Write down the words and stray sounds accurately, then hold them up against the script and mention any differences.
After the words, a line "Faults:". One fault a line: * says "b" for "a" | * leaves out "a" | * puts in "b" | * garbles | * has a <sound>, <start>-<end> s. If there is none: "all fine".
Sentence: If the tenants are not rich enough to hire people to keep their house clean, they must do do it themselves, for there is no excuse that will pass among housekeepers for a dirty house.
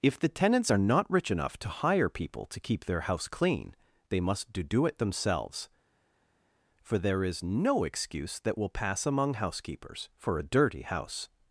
If the tenants are not rich enough to hire people to keep their house clean, they must do do it themselves, for there is no excuse that will pass among housekeepers for a dirty house.
Faults:
all fine